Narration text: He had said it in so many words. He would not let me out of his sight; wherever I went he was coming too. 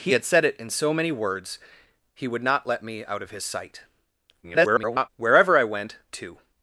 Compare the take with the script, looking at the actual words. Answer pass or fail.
fail